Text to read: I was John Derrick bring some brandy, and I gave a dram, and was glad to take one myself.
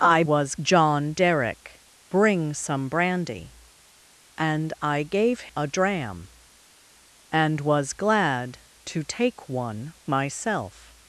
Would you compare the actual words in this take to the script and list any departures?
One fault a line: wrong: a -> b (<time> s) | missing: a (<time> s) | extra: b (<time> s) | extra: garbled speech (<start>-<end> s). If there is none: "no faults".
no faults